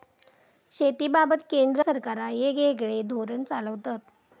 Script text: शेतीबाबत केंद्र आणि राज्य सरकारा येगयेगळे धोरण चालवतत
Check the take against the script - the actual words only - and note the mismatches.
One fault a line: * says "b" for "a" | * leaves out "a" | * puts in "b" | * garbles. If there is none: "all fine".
* leaves out "आणि राज्य"